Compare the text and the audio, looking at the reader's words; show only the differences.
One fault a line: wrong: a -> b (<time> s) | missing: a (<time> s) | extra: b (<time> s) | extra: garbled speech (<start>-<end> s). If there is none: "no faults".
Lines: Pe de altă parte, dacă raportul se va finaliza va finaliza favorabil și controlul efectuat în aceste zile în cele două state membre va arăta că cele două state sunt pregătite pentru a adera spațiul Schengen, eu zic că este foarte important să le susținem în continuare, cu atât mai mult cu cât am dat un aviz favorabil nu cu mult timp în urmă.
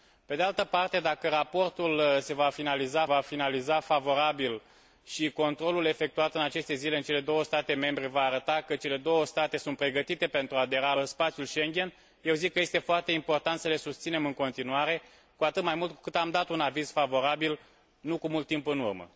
no faults